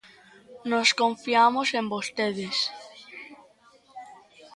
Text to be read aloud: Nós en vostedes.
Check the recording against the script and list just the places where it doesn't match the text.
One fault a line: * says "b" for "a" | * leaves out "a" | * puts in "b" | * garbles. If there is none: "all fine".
* puts in "confiamos"